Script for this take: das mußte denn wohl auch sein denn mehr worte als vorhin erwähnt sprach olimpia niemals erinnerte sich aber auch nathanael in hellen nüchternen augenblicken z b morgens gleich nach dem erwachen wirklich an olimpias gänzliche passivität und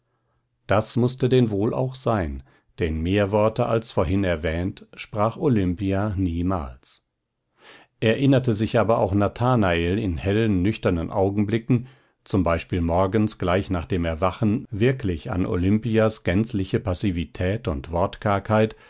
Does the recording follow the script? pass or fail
pass